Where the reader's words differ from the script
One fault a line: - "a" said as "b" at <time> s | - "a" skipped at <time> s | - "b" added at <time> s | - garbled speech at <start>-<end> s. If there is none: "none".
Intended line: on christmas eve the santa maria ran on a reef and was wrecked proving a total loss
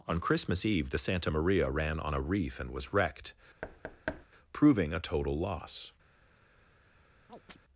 none